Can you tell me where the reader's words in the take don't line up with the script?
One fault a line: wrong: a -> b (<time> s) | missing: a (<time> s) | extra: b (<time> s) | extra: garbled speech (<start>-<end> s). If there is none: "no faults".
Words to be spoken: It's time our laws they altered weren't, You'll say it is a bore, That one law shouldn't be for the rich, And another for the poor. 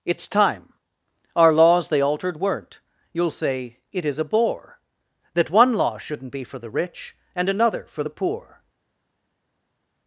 no faults